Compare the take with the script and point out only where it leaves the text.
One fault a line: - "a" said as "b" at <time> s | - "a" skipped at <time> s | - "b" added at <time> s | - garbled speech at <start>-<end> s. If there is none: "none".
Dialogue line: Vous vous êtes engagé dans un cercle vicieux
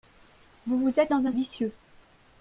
- "engagé" skipped at 1.1 s
- "cercle" skipped at 1.3 s